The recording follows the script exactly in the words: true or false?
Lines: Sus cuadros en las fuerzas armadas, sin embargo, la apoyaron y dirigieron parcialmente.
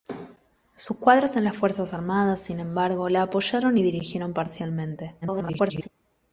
false